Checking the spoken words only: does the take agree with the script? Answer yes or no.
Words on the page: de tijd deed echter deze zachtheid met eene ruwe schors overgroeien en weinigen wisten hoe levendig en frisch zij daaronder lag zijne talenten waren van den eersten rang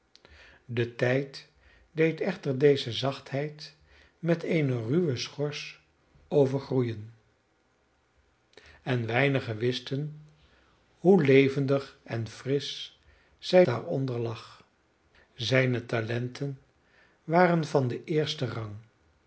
yes